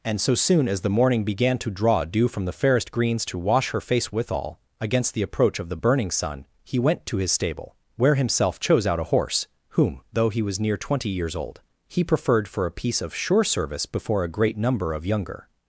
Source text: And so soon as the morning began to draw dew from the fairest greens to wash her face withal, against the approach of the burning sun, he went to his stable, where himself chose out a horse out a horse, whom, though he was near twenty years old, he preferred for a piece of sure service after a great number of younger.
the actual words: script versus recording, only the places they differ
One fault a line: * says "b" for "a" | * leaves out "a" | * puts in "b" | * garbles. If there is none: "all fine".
* leaves out "out a horse"
* says "before" for "after"